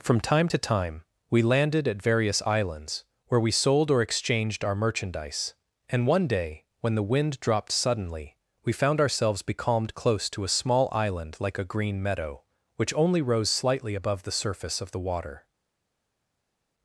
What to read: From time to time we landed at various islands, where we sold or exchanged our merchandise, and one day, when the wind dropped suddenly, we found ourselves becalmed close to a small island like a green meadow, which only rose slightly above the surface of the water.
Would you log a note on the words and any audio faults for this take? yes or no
no